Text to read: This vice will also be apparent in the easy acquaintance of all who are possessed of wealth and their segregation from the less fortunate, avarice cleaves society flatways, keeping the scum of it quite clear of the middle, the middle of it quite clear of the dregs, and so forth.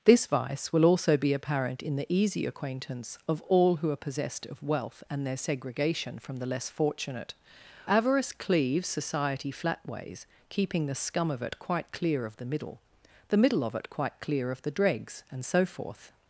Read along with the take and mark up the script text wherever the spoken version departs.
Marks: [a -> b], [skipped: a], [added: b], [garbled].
This vice will also be apparent in the easy acquaintance of all who are possessed of wealth and their segregation from the less fortunate, avarice cleaves society flatways, keeping the scum of it quite clear of the middle, the middle of it quite clear of the dregs, and so forth.